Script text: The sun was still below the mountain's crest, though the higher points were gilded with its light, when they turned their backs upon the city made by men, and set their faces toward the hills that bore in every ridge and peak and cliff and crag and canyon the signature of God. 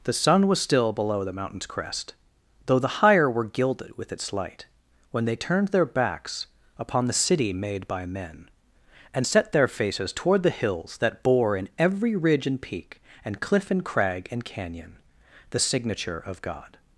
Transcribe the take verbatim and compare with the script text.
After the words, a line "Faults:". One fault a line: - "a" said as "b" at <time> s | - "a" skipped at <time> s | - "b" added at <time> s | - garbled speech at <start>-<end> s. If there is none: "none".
The sun was still below the mountain's crest, though the higher were gilded with its light, when they turned their backs upon the city made by men, and set their faces toward the hills that bore in every ridge and peak and cliff and crag and canyon the signature of God.
Faults:
- "points" skipped at 3.3 s